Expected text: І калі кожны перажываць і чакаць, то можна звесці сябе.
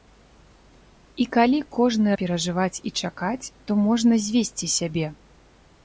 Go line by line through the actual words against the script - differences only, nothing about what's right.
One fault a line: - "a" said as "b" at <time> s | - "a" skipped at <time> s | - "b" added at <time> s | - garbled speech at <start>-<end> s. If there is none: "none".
none